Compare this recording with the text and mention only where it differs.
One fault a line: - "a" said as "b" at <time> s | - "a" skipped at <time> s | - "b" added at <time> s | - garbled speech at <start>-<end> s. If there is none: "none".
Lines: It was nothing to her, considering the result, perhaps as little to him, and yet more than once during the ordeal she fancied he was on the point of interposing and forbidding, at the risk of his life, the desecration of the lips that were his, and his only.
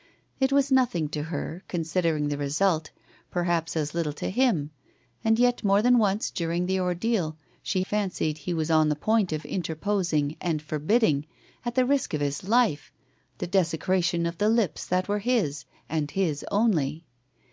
none